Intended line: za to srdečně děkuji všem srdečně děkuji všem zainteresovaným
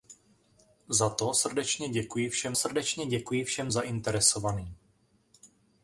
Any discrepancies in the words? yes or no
no